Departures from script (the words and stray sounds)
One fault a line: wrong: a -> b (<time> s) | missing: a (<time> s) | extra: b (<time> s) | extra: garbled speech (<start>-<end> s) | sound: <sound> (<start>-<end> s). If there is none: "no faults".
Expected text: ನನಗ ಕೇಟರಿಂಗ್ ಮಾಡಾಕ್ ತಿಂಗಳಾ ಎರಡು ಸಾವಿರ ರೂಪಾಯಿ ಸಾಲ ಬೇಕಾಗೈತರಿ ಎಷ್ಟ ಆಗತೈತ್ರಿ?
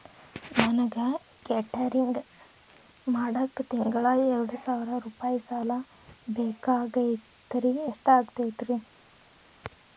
no faults